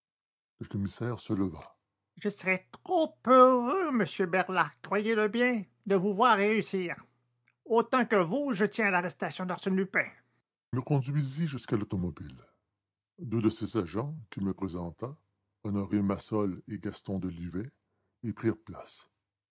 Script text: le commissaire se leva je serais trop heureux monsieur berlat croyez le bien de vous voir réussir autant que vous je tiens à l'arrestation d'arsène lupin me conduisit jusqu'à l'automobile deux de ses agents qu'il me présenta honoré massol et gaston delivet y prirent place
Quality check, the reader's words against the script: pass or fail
pass